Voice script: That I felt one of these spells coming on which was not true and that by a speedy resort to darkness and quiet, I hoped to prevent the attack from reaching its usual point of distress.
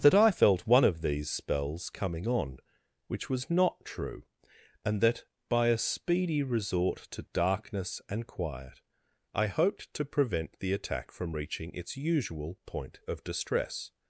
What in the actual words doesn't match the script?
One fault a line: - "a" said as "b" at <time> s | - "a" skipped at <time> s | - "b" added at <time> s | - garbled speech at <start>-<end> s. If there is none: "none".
none